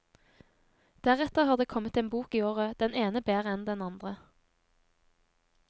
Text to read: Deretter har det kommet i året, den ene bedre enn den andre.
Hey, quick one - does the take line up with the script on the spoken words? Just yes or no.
no